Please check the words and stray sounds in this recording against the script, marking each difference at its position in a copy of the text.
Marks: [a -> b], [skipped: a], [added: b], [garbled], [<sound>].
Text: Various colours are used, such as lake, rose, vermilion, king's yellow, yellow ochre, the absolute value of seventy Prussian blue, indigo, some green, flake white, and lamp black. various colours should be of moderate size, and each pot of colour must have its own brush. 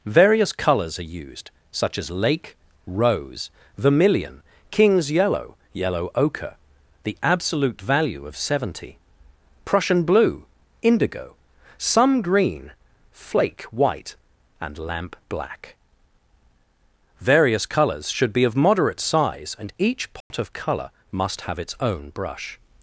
Various colours are used, such as lake, rose, vermilion, king's yellow, yellow ochre, the absolute value of seventy Prussian blue, indigo, some green, flake white, and lamp black. various colours should be of moderate size, and each pot [dropout] of colour must have its own brush.